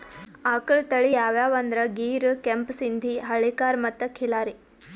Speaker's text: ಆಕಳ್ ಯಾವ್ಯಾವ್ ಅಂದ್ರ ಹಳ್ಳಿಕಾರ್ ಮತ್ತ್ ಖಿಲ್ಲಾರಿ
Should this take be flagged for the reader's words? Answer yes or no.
yes